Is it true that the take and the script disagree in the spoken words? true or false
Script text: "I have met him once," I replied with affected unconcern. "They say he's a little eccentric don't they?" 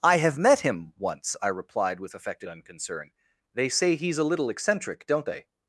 false